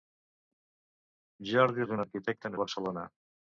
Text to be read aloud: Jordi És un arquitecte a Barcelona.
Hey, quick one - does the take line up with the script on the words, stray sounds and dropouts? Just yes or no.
yes